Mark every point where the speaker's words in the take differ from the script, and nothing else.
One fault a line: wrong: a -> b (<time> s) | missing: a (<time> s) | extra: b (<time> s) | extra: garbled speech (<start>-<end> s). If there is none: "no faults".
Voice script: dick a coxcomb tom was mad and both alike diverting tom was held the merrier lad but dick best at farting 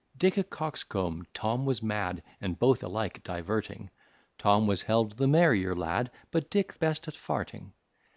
no faults